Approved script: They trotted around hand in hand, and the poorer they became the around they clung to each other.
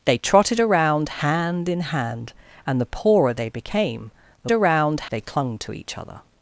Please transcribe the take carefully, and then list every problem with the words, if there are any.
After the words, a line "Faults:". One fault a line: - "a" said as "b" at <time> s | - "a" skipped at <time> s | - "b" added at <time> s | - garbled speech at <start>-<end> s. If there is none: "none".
They trotted around hand in hand, and the poorer they became the around they clung to each other.
Faults:
none